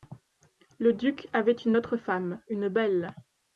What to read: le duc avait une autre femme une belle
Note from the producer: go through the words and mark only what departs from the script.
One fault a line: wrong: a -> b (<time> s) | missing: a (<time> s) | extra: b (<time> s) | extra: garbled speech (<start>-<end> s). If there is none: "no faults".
no faults